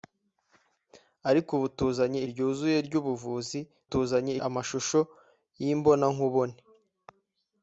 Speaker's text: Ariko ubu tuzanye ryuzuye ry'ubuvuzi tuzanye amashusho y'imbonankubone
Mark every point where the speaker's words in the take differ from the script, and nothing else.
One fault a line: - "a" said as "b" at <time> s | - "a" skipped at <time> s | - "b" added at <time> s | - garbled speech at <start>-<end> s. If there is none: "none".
none